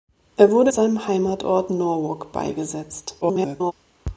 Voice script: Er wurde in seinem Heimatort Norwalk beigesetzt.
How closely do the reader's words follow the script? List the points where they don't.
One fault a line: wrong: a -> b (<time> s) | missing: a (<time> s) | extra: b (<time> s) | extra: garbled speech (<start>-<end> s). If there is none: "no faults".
missing: in (0.7 s)
extra: garbled speech (3.2-3.7 s)